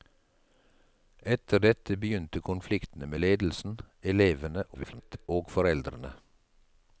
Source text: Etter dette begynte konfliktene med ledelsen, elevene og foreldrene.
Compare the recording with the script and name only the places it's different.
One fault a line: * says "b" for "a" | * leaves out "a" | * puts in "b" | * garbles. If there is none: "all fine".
* garbles